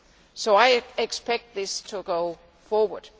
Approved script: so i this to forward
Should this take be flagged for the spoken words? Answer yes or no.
yes